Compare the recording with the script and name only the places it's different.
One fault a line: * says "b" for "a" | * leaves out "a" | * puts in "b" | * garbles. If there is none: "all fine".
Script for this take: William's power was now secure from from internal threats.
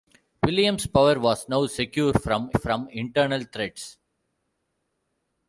all fine